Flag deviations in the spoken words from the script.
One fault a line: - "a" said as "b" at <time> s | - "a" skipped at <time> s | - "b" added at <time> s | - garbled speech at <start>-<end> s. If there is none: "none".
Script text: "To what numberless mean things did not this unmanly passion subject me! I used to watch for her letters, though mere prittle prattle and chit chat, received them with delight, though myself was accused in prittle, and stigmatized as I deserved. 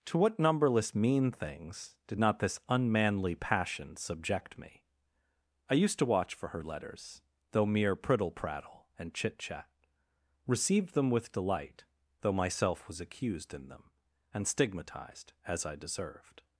- "prittle" said as "them" at 13.7 s